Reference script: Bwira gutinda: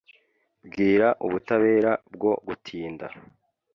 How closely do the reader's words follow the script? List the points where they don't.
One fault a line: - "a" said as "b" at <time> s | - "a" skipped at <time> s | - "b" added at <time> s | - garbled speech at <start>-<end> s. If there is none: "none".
- "ubutabera bwo" added at 1.3 s